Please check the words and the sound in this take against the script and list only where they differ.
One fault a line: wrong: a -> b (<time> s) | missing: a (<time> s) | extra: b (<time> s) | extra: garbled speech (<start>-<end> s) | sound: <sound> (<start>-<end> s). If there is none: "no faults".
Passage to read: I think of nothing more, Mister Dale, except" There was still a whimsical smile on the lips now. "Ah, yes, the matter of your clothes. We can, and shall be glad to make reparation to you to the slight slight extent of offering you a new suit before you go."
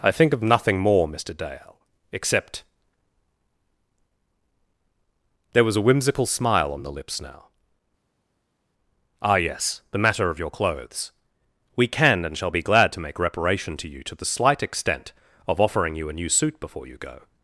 missing: still (5.8 s)
missing: slight (14.6 s)